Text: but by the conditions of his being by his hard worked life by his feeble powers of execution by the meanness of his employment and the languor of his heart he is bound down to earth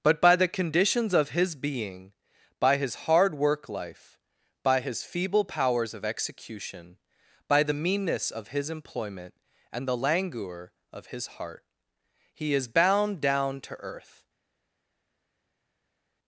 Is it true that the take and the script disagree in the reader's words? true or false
true